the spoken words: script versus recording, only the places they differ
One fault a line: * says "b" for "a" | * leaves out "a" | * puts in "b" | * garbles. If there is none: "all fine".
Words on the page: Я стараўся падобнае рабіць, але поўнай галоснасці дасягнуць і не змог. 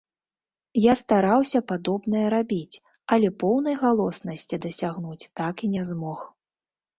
* puts in "так"